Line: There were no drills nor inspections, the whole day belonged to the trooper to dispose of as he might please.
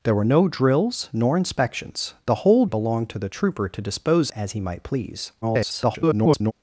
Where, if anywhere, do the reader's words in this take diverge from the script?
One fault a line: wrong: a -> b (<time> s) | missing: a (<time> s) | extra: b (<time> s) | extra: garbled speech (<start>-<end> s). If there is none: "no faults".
missing: day (2.6 s)
missing: of (4.3 s)
extra: garbled speech (5.4-6.5 s)